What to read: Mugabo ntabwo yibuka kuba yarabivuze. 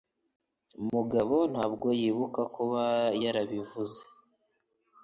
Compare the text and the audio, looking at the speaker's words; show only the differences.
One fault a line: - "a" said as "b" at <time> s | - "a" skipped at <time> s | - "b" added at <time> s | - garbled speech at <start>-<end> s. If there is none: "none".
none